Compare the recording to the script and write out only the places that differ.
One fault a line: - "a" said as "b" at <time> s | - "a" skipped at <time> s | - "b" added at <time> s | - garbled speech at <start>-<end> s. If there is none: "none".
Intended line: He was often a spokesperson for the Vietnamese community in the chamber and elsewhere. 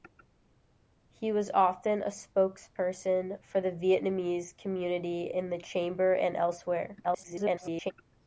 - garbled speech at 7.0-7.9 s